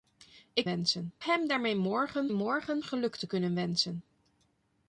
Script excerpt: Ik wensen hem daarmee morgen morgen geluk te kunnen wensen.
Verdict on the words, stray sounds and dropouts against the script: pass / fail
pass